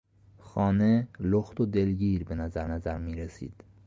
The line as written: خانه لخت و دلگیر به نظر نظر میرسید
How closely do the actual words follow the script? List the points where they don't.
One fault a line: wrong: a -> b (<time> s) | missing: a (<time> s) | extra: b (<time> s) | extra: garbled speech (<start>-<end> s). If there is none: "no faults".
no faults